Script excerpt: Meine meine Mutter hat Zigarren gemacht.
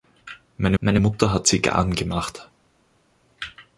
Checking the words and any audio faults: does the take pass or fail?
pass